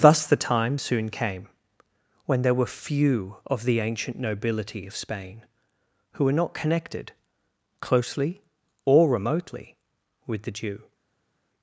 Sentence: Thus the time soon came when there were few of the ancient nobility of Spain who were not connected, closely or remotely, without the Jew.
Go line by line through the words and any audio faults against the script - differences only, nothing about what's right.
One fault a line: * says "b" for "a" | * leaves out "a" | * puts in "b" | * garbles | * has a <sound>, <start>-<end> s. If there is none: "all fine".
* says "with" for "without"